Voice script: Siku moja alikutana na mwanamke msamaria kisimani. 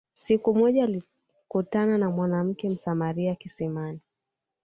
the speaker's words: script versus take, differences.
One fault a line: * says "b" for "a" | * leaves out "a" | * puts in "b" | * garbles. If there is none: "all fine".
all fine